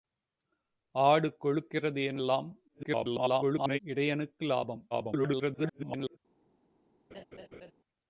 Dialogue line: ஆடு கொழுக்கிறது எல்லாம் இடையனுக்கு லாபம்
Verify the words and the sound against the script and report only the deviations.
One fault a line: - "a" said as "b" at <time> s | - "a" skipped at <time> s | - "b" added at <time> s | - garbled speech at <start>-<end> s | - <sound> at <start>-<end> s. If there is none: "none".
- garbled speech at 2.7-3.8 s
- garbled speech at 4.9-6.2 s
- laugh at 7.1-7.7 s